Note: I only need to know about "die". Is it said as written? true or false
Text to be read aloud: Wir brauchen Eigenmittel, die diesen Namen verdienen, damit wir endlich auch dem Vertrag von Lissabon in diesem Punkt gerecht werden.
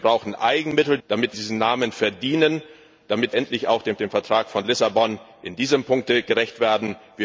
false